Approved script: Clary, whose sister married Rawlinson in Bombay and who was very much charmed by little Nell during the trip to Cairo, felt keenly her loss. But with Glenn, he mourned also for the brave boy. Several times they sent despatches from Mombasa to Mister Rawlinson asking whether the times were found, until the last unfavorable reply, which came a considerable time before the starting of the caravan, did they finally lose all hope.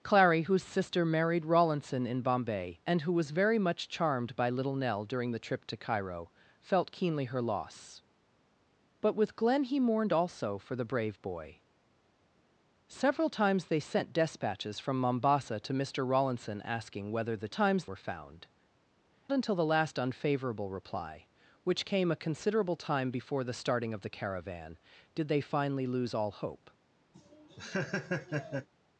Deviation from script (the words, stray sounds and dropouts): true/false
true